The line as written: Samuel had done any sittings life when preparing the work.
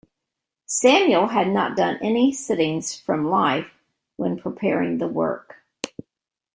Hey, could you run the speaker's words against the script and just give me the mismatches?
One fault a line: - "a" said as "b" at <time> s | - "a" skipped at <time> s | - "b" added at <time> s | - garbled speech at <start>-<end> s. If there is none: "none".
- "not" added at 1.5 s
- "from" added at 3.0 s